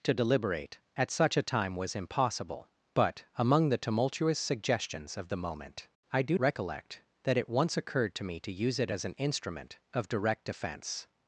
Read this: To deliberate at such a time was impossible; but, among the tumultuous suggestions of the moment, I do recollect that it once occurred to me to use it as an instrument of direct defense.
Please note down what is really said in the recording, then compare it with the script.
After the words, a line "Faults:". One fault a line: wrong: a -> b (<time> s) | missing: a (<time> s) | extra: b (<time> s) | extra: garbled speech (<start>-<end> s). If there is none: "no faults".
To deliberate at such a time was impossible; but, among the tumultuous suggestions of the moment, I do recollect that it once occurred to me to use it as an instrument of direct defense.
Faults:
no faults